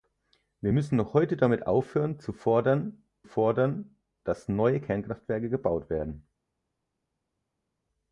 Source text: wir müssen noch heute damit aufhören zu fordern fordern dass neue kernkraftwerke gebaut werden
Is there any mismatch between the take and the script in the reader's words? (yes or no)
no